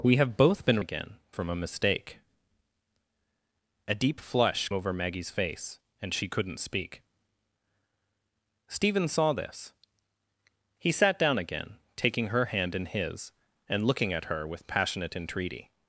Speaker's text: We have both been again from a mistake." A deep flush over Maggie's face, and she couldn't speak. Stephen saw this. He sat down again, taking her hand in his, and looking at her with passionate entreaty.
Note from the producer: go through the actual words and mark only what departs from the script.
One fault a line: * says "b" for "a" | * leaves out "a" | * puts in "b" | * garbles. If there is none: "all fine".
all fine